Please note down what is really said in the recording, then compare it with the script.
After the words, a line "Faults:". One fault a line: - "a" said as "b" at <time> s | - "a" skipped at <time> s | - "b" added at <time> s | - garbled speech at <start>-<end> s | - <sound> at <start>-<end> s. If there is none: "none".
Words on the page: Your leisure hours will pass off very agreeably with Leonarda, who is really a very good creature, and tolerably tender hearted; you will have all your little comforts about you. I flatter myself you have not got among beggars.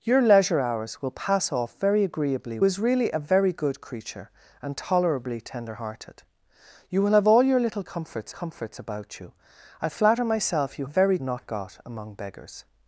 Your leisure hours will pass off very agreeably is really a very good creature, and tolerably tender hearted; you will have all your little comforts comforts about you. I flatter myself you very not got among beggars.
Faults:
- "with Leonarda who" skipped at 2.6 s
- "comforts" added at 8.3 s
- "have" said as "very" at 10.8 s